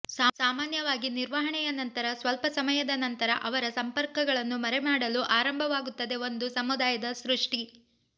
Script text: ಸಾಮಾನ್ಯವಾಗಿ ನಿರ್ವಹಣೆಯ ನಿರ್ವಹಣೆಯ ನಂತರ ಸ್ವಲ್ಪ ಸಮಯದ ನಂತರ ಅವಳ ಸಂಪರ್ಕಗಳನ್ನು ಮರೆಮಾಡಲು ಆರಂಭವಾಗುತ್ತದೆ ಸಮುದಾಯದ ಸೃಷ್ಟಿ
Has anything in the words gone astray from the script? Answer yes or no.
yes